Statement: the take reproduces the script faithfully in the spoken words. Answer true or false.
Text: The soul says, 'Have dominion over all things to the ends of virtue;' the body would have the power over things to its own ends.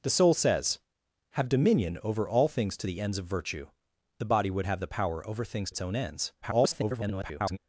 false